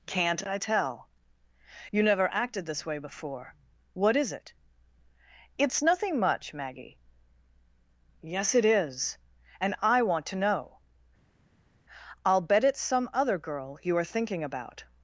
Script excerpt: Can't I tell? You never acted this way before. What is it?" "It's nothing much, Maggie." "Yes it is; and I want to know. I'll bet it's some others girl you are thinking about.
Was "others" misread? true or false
true